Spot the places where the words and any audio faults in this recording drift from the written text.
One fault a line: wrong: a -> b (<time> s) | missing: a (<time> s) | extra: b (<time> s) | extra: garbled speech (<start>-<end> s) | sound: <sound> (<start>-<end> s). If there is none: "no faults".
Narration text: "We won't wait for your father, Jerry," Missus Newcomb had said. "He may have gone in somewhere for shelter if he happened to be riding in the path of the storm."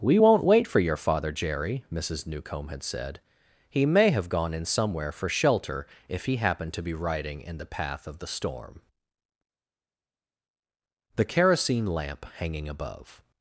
extra: The kerosene lamp hanging above (11.2 s)